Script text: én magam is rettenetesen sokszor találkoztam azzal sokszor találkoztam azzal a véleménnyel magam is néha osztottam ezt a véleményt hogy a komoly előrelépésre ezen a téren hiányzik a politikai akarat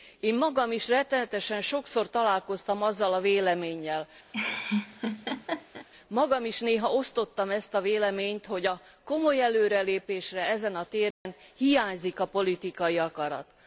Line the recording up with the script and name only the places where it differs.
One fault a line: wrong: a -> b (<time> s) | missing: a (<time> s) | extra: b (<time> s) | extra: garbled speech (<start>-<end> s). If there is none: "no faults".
missing: sokszor találkoztam azzal (3.1 s)